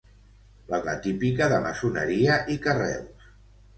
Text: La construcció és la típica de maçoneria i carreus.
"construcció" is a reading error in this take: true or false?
true